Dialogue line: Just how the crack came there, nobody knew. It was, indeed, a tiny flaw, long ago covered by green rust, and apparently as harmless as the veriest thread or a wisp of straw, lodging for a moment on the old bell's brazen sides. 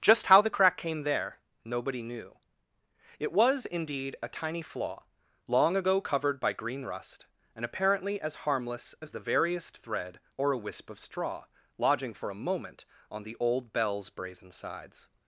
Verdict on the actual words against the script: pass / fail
pass